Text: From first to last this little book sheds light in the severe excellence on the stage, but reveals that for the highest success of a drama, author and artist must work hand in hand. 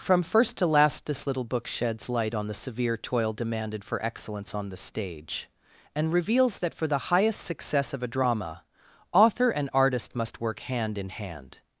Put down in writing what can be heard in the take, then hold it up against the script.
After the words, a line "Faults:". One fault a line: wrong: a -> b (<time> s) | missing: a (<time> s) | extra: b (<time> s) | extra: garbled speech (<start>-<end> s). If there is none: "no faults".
From first to last this little book sheds light on the severe toil demanded for excellence on the stage, and reveals that for the highest success of a drama, author and artist must work hand in hand.
Faults:
wrong: in -> on (2.3 s)
extra: toil demanded for (3.0 s)
wrong: but -> and (5.9 s)